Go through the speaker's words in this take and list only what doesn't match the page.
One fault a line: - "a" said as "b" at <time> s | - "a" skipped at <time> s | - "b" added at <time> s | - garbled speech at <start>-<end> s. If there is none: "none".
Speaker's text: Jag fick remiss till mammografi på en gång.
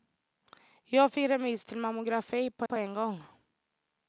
- "på" added at 2.6 s